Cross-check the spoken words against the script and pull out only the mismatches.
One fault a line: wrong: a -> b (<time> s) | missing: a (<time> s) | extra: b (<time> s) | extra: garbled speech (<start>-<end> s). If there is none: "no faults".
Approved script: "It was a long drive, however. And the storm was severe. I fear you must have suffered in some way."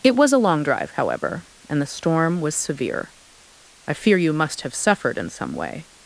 no faults